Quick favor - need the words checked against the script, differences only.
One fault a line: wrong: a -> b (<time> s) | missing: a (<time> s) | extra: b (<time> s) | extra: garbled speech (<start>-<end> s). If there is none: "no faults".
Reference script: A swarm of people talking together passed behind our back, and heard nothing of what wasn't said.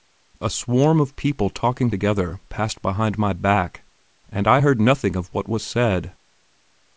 wrong: our -> my (3.2 s)
extra: I (4.5 s)
wrong: wasn't -> was (5.5 s)